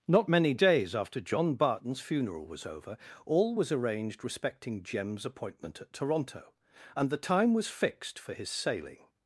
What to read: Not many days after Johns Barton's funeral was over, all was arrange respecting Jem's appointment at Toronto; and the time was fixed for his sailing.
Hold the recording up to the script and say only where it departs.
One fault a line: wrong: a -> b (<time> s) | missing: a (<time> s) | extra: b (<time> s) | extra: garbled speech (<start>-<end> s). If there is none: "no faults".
wrong: Johns -> John (1.2 s)
wrong: arrange -> arranged (3.7 s)